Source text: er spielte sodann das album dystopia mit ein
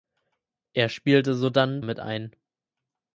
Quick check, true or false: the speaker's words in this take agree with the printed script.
false